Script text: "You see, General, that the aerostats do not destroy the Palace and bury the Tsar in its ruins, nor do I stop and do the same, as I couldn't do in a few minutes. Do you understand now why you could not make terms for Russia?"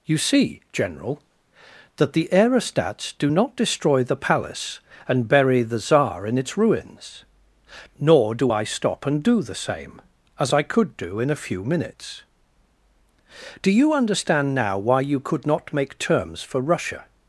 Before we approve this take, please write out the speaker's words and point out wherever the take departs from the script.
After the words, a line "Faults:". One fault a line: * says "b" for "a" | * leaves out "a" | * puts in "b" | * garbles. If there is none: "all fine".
"You see, General, that the aerostats do not destroy the Palace and bury the Tsar in its ruins, nor do I stop and do the same, as I could do in a few minutes. Do you understand now why you could not make terms for Russia?"
Faults:
* says "could" for "couldn't"